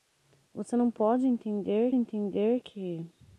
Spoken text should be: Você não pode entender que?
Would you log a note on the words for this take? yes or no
yes